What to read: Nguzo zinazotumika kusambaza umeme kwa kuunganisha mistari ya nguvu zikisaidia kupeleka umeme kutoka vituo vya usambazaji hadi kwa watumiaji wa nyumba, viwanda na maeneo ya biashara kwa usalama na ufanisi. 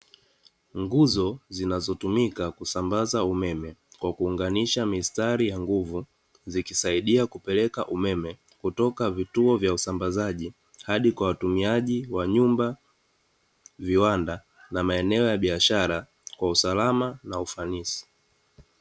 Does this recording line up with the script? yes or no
yes